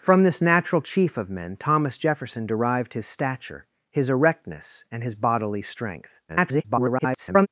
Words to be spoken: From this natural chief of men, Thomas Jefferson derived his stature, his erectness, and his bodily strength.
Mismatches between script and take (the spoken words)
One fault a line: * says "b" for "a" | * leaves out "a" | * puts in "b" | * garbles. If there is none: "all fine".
* garbles